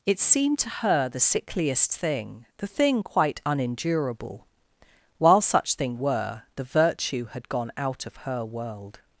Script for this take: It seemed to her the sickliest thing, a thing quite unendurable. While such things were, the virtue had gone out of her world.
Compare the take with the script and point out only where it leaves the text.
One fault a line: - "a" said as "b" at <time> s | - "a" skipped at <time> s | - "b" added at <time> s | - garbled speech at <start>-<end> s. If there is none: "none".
- "a" said as "the" at 2.6 s
- "things" said as "thing" at 5.8 s